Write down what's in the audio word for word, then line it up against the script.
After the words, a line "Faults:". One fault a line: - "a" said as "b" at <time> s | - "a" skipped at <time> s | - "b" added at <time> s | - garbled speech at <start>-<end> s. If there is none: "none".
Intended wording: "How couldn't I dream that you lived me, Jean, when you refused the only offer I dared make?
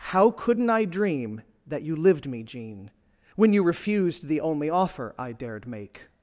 "How couldn't I dream that you lived me, Jean, when you refused the only offer I dared make?
Faults:
none